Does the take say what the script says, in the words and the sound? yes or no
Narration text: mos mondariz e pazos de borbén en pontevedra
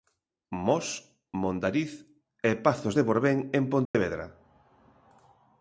no